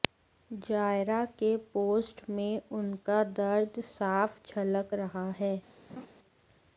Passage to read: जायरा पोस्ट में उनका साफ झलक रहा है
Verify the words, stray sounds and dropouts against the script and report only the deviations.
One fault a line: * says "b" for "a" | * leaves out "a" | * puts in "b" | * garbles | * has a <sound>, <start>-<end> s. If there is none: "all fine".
* puts in "के"
* puts in "दर्द"
* has a laugh, 5.9-6.1 s